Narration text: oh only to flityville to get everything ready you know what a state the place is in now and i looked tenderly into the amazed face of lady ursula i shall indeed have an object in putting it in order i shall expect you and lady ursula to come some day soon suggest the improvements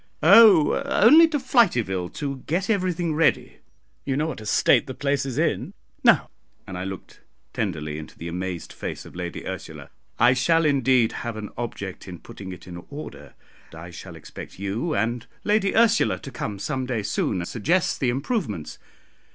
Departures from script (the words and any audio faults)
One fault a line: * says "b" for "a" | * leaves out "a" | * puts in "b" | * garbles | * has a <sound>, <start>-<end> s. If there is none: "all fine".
all fine